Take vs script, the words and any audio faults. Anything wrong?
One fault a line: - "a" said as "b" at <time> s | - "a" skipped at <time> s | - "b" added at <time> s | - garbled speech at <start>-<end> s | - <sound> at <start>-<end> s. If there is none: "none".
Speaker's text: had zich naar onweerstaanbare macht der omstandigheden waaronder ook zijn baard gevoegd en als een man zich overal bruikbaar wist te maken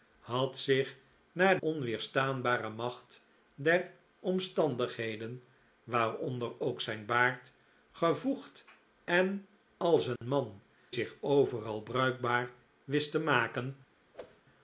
- dropout at 10.2-10.2 s
- whoosh at 14.1-14.4 s